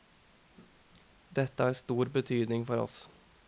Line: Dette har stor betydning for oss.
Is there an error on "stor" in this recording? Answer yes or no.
no